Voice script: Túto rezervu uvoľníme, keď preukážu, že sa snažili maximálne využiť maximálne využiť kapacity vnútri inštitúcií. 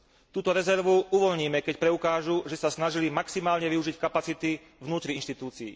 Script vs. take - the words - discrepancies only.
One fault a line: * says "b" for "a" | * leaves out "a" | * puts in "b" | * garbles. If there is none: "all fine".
* leaves out "maximálne využiť"